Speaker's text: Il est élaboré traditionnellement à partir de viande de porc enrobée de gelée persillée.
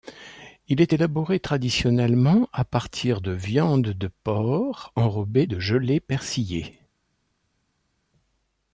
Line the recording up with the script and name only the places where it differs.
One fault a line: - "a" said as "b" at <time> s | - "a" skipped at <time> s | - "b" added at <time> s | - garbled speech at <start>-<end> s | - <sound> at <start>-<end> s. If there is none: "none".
none